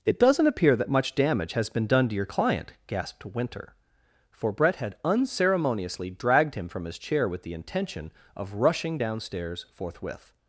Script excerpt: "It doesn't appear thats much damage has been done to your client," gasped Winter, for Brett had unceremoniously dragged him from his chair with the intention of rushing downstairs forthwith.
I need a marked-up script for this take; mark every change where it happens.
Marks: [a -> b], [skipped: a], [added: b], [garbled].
"It doesn't appear [thats -> that] much damage has been done to your client," gasped Winter, for Brett had unceremoniously dragged him from his chair with the intention of rushing downstairs forthwith.